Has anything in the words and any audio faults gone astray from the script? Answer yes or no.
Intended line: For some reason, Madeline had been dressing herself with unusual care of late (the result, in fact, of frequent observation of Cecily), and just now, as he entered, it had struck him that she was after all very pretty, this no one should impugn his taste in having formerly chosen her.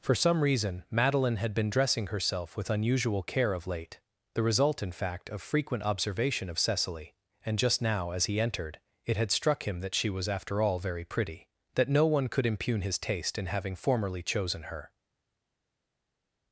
yes